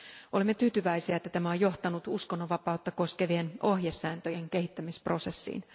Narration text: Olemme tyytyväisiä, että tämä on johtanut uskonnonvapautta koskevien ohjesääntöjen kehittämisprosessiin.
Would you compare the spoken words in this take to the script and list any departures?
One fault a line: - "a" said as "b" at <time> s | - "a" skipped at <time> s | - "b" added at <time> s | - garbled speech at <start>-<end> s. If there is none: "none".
none